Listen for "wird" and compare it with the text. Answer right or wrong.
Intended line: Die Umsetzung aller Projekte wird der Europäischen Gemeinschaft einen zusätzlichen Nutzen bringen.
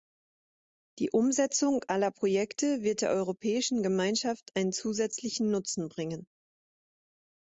right